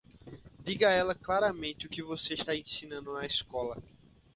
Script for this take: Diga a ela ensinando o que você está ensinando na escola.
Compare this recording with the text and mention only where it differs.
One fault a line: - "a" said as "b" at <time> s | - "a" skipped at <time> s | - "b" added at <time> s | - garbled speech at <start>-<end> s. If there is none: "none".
- "ensinando" said as "claramente" at 1.1 s